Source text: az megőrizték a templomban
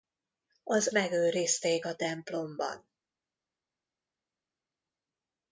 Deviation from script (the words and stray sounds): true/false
false